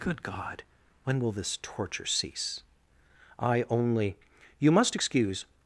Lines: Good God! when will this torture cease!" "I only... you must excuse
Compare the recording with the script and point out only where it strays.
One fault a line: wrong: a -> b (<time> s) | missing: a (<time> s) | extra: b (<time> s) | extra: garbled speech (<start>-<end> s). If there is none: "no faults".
no faults